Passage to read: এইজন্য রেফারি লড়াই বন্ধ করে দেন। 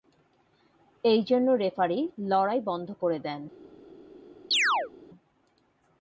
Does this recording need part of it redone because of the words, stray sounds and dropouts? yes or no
yes